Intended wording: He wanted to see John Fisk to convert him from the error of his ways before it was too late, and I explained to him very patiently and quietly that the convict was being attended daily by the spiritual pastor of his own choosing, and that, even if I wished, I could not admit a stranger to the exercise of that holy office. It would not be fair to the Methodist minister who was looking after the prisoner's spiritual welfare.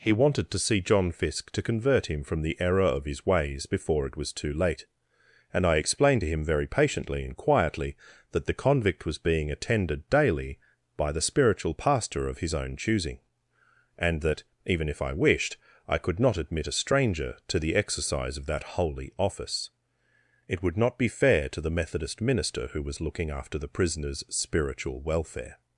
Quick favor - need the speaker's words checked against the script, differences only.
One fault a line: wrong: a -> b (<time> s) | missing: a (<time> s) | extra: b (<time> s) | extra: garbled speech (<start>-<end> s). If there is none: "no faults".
no faults